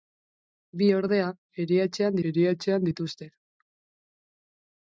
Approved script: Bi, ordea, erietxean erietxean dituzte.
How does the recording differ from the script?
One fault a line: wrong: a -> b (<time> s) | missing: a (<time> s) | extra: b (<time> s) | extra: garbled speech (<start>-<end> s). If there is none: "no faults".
no faults